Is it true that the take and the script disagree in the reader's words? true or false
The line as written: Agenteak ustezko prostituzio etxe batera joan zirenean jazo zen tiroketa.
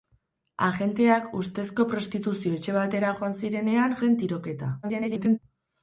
true